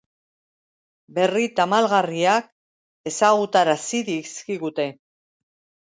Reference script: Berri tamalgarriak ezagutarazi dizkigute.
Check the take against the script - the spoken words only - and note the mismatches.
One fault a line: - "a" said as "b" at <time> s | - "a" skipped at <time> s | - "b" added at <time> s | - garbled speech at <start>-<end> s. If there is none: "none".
none